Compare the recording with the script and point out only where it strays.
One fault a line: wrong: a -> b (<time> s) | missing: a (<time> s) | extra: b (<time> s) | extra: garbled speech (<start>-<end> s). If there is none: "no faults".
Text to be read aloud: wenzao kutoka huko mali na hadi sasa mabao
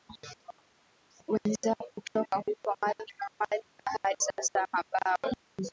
no faults